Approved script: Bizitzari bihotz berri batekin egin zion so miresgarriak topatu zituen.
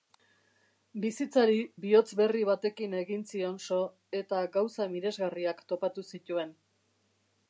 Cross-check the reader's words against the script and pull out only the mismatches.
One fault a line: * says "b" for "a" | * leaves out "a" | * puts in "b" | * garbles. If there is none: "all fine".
* puts in "eta gauza"